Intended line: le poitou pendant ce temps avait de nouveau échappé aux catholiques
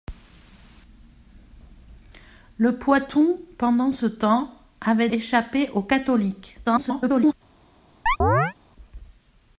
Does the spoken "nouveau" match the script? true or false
false